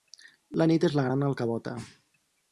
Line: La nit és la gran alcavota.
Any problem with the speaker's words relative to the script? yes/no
no